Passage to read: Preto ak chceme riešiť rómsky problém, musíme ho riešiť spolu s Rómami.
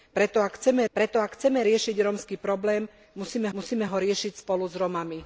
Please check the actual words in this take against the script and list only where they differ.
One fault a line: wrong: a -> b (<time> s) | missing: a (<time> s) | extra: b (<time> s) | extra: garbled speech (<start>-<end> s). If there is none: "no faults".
extra: preto ak chceme (0.9 s)
extra: musíme (3.5 s)